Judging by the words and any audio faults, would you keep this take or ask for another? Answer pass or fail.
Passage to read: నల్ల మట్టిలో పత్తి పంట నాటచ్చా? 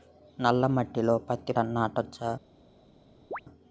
fail